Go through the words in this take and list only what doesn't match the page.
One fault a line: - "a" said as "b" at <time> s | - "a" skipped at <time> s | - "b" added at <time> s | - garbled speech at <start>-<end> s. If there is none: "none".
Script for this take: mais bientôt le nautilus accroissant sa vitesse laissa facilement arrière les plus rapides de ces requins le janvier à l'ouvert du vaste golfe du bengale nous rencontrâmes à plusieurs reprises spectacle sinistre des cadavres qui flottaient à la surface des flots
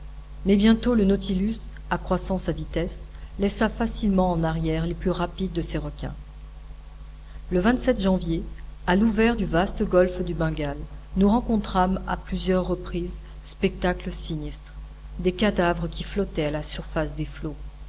- "en" added at 4.3 s